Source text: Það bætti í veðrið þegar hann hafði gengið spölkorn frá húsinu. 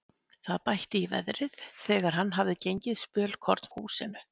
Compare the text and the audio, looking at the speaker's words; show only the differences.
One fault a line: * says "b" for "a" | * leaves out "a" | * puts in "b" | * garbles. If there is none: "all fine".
* leaves out "frá"